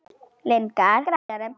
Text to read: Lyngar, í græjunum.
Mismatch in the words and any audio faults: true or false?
true